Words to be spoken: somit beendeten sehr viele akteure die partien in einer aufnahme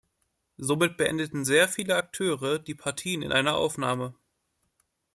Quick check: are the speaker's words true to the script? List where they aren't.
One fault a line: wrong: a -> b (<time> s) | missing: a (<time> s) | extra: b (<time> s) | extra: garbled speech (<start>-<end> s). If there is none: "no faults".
no faults